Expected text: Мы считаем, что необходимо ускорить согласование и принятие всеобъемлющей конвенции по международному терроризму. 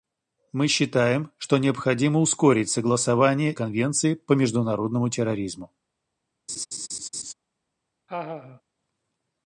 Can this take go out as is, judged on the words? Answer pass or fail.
fail